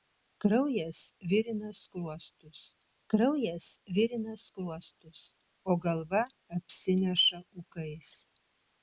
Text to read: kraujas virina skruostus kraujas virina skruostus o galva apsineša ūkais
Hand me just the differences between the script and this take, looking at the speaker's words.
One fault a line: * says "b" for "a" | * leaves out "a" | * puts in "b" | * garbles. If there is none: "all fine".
all fine